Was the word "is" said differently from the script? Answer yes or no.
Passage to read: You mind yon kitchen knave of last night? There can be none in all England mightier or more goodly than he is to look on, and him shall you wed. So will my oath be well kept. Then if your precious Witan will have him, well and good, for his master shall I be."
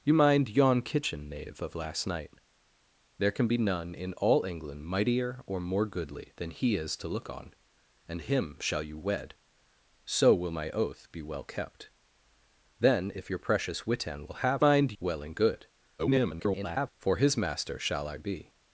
no